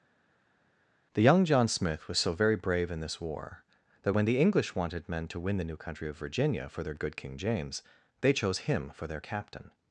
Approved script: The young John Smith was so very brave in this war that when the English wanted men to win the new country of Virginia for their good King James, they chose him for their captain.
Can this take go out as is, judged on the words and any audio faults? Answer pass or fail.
pass